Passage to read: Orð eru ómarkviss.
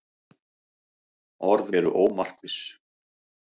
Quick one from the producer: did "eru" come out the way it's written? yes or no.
yes